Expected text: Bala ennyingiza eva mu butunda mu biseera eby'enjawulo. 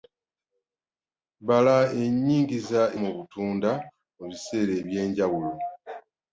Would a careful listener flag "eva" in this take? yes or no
yes